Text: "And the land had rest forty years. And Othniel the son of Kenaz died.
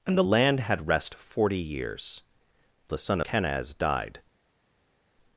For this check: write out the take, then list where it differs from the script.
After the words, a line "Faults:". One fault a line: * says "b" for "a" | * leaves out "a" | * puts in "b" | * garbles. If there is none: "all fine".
"And the land had rest forty years. The son Kenaz died.
Faults:
* leaves out "And Othniel"
* leaves out "of"